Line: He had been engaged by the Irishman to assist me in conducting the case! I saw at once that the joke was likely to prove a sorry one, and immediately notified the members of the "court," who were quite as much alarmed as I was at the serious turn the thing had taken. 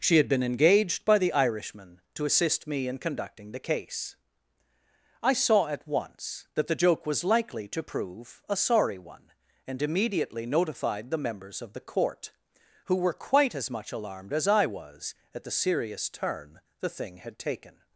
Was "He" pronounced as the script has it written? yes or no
no